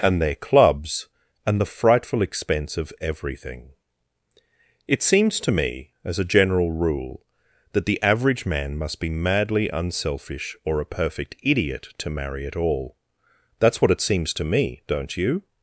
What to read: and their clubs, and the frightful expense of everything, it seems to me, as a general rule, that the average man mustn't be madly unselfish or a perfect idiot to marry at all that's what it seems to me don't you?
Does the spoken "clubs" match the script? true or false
true